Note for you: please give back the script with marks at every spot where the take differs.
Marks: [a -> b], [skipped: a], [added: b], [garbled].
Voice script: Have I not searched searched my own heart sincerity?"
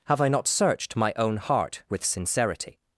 Have I not searched [skipped: searched] my own heart [added: with] sincerity?"